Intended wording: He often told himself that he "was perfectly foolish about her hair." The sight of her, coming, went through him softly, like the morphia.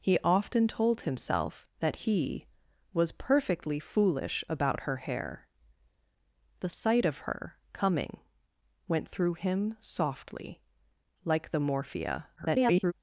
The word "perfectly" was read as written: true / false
true